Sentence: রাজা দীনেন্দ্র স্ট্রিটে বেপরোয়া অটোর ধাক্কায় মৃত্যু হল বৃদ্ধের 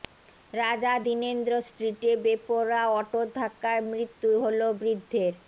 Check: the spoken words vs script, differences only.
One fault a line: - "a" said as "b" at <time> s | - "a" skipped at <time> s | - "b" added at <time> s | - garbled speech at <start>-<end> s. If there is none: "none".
none